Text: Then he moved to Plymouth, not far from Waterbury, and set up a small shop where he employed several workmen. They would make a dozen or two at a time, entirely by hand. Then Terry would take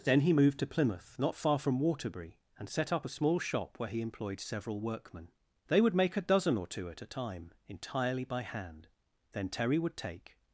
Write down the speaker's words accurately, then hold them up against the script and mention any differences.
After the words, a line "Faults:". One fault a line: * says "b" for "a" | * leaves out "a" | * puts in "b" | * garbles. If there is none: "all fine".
Then he moved to Plymouth, not far from Waterbury, and set up a small shop where he employed several workmen. They would make a dozen or two at a time, entirely by hand. Then Terry would take
Faults:
all fine